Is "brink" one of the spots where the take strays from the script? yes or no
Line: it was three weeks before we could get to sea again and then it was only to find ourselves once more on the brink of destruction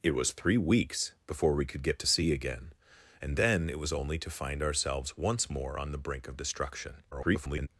no